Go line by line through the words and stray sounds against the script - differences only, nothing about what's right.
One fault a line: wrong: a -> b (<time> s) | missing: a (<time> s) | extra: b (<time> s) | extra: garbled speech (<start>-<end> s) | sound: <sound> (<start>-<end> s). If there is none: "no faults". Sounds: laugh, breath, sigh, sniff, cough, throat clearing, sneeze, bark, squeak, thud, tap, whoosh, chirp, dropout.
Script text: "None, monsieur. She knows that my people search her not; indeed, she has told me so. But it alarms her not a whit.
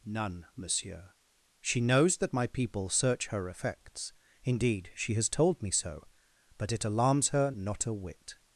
wrong: not -> effects (3.5 s)